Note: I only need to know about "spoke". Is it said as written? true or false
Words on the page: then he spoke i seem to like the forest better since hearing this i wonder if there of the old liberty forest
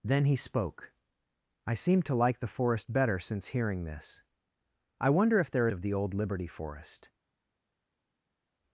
true